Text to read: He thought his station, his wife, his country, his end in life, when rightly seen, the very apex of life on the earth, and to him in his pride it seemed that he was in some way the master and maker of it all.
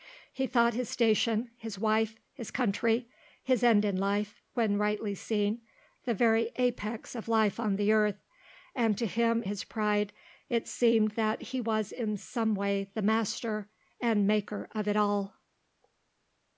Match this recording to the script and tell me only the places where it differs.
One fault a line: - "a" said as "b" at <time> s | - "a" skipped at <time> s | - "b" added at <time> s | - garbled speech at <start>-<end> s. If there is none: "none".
- "in" skipped at 9.4 s